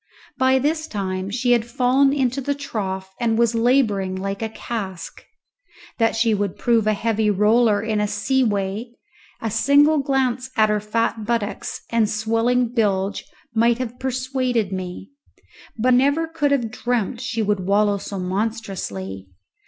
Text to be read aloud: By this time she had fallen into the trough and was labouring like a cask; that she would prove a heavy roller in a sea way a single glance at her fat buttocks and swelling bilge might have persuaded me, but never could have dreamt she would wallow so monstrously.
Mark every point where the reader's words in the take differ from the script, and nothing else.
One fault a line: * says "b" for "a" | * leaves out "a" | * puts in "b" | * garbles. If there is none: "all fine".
all fine